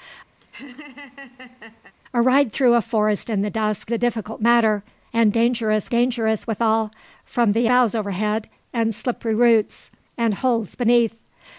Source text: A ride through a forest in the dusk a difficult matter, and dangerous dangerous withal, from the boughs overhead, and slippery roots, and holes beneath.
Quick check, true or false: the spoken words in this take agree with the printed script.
true